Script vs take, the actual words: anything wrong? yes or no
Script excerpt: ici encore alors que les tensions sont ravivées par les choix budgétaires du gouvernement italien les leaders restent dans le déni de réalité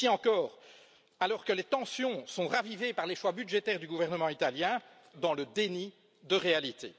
yes